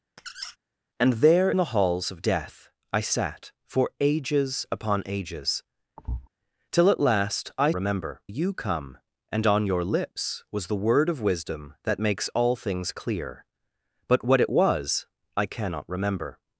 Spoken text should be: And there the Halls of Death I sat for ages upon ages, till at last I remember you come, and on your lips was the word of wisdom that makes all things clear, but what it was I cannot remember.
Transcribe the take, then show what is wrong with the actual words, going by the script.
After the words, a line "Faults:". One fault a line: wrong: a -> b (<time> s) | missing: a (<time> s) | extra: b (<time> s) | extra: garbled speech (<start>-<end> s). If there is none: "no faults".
And there the Halls of Death I sat for ages upon ages, till at last I remember you come, and on your lips was the word of wisdom that makes all things clear, but what it was I cannot remember.
Faults:
no faults